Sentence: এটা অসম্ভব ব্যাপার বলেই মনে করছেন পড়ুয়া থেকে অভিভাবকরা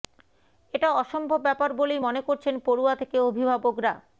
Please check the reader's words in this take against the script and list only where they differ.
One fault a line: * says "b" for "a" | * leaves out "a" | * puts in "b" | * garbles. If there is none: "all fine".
all fine